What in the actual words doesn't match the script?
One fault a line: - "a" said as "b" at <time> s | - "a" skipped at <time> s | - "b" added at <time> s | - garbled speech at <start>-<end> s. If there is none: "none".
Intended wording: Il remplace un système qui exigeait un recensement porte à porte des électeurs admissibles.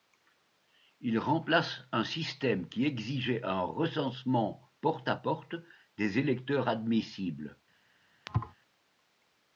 none